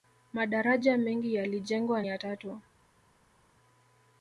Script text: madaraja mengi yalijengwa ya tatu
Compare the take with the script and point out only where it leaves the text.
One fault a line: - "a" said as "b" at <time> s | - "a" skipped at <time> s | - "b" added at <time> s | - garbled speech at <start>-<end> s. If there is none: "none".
none